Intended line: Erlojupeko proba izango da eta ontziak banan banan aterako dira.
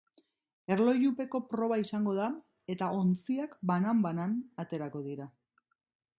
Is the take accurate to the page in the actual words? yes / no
yes